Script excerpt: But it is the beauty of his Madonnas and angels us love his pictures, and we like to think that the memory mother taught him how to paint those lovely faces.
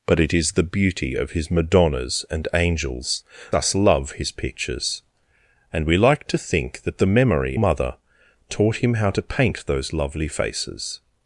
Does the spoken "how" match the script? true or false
true